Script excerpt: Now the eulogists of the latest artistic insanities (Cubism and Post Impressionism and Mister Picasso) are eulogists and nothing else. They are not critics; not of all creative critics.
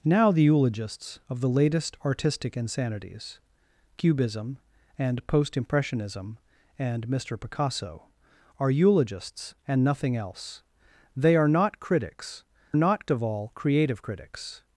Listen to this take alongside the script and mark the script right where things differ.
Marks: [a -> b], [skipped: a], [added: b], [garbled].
Now the eulogists of the latest artistic insanities (Cubism and Post Impressionism and Mister Picasso) are eulogists and nothing else. They are not critics; not of all creative critics.